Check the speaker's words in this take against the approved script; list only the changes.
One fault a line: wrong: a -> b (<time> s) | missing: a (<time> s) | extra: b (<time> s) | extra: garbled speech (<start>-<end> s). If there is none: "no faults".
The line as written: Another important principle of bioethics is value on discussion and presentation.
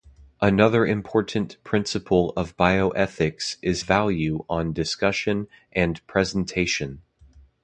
no faults